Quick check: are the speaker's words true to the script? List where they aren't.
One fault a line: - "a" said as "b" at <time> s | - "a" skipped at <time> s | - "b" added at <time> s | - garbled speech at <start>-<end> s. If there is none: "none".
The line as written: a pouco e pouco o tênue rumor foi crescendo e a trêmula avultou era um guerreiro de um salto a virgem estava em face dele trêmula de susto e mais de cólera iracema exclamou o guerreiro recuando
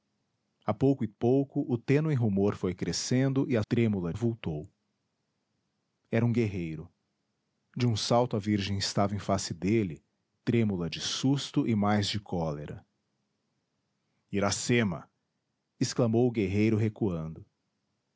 none